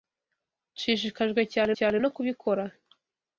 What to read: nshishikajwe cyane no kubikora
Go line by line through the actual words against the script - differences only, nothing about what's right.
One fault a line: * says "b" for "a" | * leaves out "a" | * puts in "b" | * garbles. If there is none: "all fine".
* puts in "cyane"